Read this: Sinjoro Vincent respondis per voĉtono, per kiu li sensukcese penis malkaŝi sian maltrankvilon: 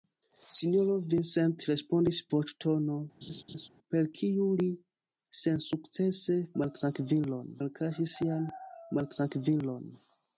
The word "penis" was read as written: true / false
false